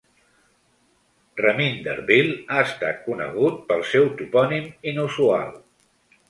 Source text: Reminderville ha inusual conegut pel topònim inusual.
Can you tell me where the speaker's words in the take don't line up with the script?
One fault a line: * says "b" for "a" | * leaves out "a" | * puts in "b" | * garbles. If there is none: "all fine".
* says "estat" for "inusual"
* puts in "seu"